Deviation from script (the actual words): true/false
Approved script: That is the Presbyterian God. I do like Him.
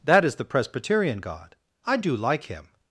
false